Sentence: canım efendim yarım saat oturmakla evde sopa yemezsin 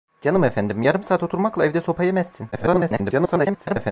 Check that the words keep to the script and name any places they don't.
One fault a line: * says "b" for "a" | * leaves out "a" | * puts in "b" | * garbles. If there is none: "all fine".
* garbles